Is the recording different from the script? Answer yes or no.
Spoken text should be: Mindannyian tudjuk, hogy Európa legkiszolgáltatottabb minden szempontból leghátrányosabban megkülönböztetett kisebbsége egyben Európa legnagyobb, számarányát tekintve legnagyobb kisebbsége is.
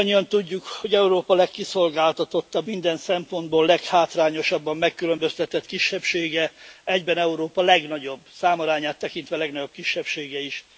no